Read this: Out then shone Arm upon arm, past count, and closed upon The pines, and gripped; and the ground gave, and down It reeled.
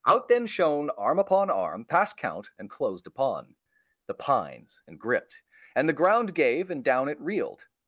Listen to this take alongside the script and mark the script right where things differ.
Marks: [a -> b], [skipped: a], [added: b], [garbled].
Out then shone Arm upon arm, past count, and closed upon The pines, and gripped; and the ground gave, and down It reeled.